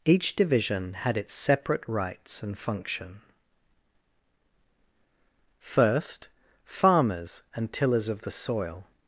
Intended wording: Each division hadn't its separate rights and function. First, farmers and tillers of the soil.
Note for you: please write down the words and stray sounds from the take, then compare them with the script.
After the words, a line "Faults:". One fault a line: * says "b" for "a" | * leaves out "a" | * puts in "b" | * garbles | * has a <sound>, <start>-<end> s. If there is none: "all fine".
Each division had its separate rights and function. First, farmers and tillers of the soil.
Faults:
* says "had" for "hadn't"